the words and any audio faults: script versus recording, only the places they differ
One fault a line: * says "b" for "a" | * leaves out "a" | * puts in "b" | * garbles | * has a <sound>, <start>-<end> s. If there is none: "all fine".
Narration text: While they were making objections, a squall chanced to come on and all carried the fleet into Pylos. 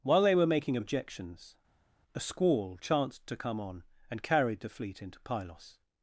* leaves out "all"